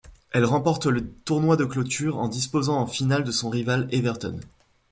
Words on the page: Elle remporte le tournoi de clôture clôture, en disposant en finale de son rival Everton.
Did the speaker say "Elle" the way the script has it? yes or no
yes